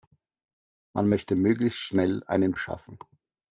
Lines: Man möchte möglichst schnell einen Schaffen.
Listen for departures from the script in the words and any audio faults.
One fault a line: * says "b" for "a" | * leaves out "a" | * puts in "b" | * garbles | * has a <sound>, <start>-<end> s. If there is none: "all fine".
all fine